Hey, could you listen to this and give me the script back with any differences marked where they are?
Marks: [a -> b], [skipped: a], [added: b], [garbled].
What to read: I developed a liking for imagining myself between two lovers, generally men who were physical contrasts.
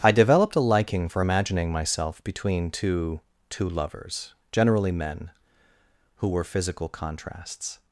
I developed a liking for imagining myself between two [added: two] lovers, generally men who were physical contrasts.